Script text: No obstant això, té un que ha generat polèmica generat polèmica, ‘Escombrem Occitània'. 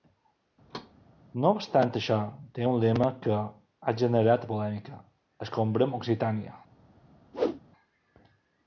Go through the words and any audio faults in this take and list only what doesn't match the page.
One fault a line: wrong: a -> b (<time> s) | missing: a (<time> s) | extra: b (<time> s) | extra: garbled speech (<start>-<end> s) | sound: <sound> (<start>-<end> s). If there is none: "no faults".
sound: thud (0.7-0.9 s)
extra: lema (2.8 s)
missing: generat polèmica (5.0 s)
sound: whoosh (7.3-7.6 s)